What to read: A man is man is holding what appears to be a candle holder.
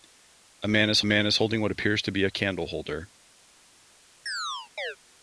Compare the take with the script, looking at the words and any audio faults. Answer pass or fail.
fail